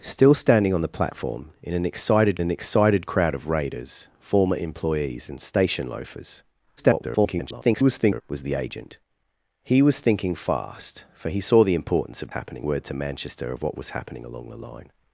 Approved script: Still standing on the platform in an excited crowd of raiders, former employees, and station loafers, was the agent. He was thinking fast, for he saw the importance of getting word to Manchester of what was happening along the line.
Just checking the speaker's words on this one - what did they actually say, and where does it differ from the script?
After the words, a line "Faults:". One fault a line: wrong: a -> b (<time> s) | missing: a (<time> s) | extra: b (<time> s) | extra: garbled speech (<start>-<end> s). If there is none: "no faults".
Still standing on the platform in an excited an excited crowd of raiders, former employees, and station loafers, [garbled] was the agent. He was thinking fast, for he saw the importance of happening word to Manchester of what was happening along the line.
Faults:
extra: an excited (2.4 s)
extra: garbled speech (6.8-8.2 s)
wrong: getting -> happening (12.3 s)